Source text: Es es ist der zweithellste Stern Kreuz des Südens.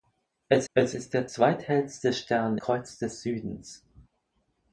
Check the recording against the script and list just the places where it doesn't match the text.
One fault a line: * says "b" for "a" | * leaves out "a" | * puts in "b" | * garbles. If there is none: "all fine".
all fine